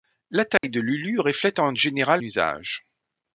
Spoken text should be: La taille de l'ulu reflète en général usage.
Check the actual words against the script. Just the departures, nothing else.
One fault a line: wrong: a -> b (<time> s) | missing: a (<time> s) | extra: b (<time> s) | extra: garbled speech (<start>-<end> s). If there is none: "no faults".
no faults